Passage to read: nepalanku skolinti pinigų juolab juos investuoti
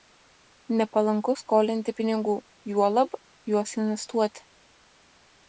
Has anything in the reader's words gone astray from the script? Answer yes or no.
no